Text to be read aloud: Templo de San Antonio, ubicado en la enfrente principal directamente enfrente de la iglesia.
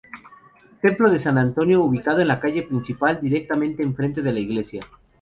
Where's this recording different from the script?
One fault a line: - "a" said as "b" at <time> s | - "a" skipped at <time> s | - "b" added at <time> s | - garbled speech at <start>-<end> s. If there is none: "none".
- "enfrente" said as "calle" at 2.4 s